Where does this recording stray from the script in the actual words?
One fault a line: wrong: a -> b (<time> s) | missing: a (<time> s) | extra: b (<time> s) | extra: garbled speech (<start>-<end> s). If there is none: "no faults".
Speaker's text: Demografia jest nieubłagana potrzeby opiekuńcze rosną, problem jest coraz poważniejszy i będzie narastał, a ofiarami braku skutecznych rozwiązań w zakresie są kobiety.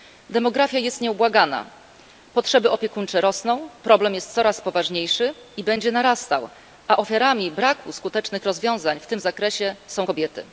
extra: tym (9.1 s)